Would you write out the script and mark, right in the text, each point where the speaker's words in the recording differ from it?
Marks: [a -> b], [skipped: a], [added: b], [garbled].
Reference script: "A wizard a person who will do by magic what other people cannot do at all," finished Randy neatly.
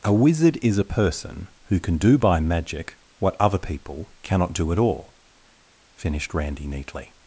"A wizard [added: is] a person who [will -> can] do by magic what other people cannot do at all," finished Randy neatly.